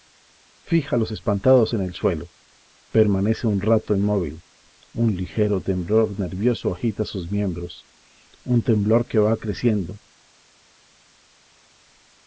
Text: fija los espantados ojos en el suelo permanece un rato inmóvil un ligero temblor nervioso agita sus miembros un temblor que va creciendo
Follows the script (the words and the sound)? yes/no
no